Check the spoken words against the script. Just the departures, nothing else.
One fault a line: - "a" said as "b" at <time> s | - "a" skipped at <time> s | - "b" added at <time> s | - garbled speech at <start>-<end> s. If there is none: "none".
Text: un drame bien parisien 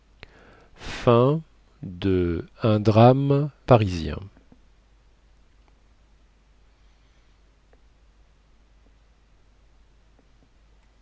- "bien" skipped at 3.5 s